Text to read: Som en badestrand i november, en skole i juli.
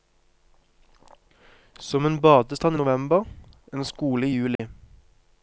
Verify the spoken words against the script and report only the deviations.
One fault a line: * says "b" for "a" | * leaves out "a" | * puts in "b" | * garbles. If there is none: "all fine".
all fine